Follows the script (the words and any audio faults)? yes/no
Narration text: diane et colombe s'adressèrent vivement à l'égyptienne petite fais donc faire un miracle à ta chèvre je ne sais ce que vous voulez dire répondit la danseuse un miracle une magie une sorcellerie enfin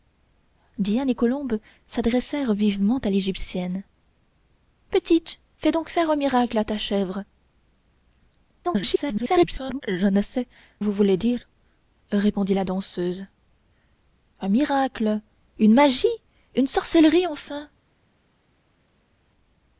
no